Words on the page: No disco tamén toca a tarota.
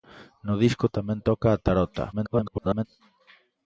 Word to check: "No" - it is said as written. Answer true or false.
true